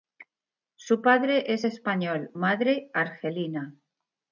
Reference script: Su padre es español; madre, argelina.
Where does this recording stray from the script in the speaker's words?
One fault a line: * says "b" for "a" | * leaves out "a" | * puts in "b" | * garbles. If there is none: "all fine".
all fine